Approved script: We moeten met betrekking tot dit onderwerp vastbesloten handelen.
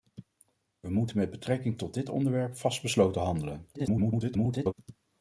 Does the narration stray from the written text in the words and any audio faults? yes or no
yes